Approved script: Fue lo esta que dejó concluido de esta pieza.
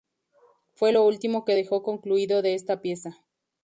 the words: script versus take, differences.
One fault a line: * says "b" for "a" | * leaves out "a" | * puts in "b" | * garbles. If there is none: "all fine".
* says "último" for "esta"